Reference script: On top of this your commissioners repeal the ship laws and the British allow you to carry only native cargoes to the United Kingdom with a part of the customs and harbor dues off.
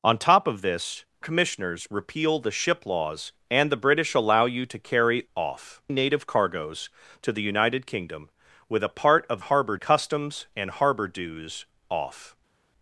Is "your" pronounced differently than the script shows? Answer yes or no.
yes